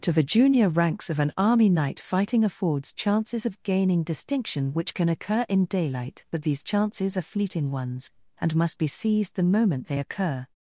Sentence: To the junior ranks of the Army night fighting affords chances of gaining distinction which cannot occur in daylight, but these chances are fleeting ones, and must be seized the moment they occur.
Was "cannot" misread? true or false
true